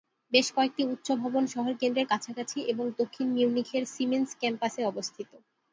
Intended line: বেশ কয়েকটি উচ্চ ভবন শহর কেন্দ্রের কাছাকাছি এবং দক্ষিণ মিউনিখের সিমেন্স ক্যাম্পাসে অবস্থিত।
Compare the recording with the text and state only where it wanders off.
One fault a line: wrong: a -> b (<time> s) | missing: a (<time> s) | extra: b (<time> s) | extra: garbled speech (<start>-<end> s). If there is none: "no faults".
no faults